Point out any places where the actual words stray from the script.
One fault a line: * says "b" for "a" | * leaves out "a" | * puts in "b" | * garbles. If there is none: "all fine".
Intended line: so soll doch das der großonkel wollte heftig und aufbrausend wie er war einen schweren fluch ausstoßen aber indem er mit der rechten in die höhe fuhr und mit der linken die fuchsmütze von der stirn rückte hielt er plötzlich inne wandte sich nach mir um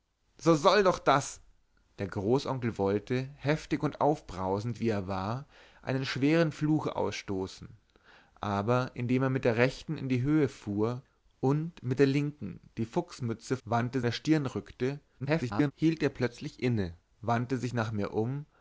* says "wandte" for "von"
* garbles